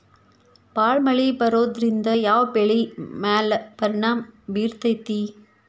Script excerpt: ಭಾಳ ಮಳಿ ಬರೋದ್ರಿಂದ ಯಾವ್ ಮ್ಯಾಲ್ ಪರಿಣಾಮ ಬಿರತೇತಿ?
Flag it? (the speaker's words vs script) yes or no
yes